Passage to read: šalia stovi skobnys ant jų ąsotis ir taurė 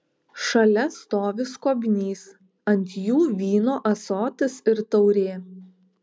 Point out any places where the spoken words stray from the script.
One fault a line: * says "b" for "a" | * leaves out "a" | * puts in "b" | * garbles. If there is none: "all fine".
* puts in "vyno"